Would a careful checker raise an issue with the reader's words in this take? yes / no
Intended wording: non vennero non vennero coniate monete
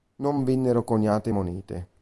yes